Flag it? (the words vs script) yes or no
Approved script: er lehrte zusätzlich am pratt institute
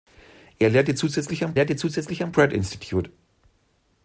yes